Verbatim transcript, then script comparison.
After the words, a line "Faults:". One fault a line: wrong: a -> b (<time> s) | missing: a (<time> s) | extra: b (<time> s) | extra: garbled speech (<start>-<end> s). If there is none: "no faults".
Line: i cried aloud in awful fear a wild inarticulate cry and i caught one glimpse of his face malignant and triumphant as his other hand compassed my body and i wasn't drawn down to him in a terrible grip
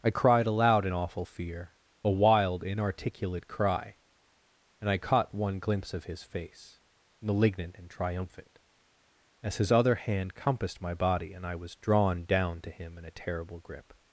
i cried aloud in awful fear a wild inarticulate cry and i caught one glimpse of his face malignant and triumphant as his other hand compassed my body and i was drawn down to him in a terrible grip
Faults:
wrong: wasn't -> was (11.6 s)